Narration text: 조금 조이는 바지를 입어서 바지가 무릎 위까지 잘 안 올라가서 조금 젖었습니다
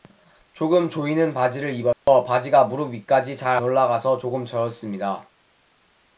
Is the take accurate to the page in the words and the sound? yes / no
no